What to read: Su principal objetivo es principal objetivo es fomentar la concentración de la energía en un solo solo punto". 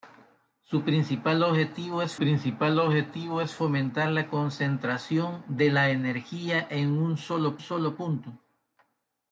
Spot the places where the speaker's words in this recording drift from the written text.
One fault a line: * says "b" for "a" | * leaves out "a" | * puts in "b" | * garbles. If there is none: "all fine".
all fine